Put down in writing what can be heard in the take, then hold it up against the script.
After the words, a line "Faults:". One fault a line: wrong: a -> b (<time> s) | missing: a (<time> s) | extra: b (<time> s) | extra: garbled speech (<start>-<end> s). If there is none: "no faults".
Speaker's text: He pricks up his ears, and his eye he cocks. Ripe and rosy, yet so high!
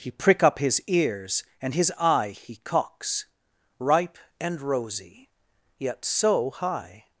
He prick up his ears, and his eye he cocks. Ripe and rosy, yet so high!
Faults:
wrong: pricks -> prick (0.1 s)